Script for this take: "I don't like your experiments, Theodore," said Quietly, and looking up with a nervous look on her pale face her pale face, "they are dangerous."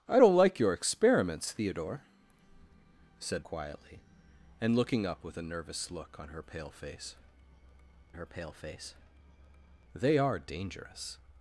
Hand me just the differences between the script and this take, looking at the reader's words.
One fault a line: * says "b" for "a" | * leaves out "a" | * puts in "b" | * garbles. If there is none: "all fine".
all fine